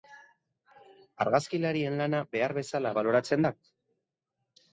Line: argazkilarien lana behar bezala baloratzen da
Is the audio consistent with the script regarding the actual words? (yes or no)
yes